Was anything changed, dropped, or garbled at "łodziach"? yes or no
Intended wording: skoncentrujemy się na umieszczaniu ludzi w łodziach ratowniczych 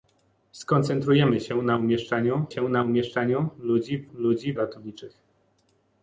yes